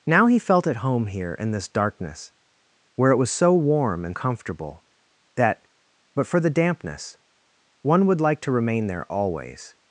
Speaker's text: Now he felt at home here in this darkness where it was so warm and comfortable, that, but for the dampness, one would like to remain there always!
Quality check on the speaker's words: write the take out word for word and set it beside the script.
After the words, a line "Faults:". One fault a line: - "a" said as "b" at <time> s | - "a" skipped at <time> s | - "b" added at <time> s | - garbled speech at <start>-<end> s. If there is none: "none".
Now he felt at home here in this darkness where it was so warm and comfortable, that, but for the dampness, one would like to remain there always!
Faults:
none